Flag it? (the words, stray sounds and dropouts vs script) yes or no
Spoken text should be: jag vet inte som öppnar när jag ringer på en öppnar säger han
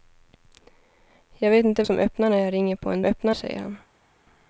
no